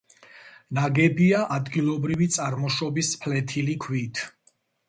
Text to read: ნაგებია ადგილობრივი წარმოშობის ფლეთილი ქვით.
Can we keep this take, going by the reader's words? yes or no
yes